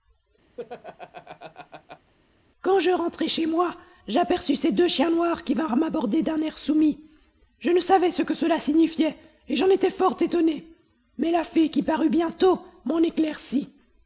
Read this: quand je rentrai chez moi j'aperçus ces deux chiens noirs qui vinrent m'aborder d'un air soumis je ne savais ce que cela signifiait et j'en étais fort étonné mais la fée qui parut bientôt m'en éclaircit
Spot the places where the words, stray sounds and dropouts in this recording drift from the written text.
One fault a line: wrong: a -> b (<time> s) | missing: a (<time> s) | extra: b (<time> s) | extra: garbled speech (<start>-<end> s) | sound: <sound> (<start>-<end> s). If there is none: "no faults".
sound: laugh (0.6-2.1 s)